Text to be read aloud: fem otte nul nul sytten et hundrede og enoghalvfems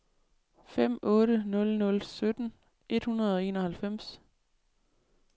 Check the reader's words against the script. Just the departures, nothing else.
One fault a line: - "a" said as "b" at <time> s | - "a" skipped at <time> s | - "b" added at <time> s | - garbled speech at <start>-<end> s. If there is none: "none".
none